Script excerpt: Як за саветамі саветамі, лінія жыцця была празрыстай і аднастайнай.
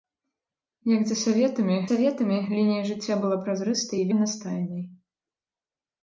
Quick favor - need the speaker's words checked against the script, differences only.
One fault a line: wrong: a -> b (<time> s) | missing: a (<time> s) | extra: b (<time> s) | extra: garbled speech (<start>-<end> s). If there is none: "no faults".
no faults